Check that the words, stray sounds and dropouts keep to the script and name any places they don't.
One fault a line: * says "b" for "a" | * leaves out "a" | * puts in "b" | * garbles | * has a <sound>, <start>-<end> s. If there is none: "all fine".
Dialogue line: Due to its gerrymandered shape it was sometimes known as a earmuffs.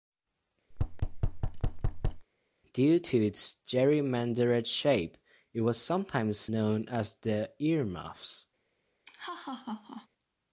* has a thud, 0.7-2.3 s
* says "the" for "a"
* has a laugh, 9.0-10.1 s